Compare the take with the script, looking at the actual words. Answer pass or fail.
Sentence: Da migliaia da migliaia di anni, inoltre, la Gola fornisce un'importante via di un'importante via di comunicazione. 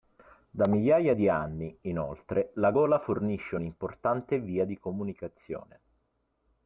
fail